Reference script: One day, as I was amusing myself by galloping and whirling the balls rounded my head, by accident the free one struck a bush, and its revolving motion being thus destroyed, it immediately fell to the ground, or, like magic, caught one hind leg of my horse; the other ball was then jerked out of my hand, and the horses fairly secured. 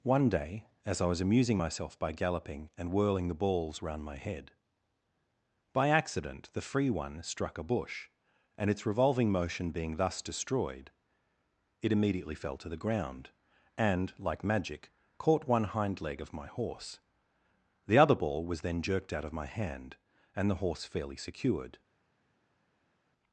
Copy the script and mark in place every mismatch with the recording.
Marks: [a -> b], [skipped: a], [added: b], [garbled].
One day, as I was amusing myself by galloping and whirling the balls [rounded -> round] my head, by accident the free one struck a bush, and its revolving motion being thus destroyed, it immediately fell to the ground, [or, -> and] like magic, caught one hind leg of my horse; the other ball was then jerked out of my hand, and the [horses -> horse] fairly secured.